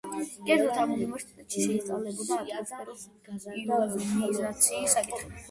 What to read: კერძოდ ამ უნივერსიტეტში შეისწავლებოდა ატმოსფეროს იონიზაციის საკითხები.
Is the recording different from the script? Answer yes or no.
no